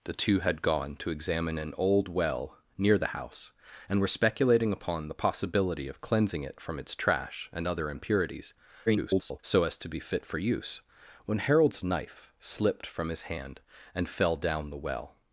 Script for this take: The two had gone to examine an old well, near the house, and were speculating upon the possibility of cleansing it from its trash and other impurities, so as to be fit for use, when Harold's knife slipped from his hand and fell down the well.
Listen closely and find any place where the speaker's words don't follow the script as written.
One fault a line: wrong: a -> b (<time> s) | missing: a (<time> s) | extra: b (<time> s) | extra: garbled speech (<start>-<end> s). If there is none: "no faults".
extra: garbled speech (8.9-9.4 s)